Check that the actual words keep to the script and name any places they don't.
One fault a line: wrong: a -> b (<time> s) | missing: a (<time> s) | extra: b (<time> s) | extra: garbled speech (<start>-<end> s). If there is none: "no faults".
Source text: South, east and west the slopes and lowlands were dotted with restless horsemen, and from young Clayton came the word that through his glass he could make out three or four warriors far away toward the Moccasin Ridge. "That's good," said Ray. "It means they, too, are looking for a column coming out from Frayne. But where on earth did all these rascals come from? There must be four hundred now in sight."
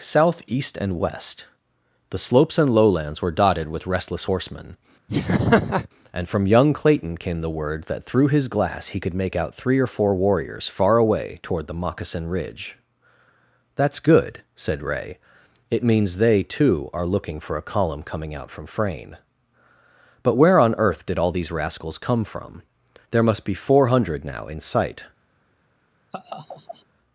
no faults